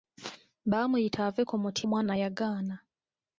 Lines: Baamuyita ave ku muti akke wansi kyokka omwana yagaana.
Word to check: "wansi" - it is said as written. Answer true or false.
false